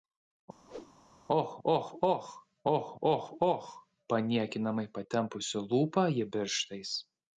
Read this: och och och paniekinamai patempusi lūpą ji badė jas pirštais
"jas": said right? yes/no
no